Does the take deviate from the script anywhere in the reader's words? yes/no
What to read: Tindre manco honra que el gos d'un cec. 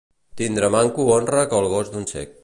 no